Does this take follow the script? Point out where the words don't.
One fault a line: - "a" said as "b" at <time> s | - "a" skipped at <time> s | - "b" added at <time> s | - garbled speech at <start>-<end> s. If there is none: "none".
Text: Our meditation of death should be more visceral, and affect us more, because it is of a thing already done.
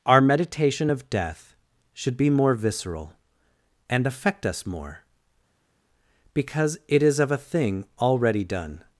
none